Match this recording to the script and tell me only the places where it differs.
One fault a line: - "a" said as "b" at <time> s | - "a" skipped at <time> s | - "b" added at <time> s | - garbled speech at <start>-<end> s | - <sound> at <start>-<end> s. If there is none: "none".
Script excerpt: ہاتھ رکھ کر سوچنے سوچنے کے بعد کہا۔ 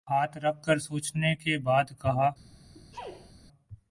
- "سوچنے" skipped at 1.4 s
- sneeze at 2.7-3.3 s